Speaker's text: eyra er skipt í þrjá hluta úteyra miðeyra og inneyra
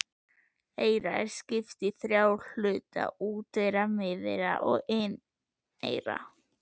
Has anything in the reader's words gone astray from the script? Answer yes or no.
no